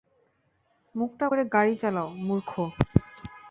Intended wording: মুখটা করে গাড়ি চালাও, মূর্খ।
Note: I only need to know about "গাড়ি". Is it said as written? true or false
true